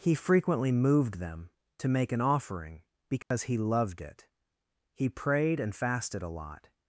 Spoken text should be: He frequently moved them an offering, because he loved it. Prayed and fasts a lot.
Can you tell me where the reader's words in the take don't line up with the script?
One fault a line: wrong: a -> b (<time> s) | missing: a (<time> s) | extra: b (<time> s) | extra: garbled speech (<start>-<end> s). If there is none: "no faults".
extra: to make (1.8 s)
extra: He (5.0 s)
wrong: fasts -> fasted (5.7 s)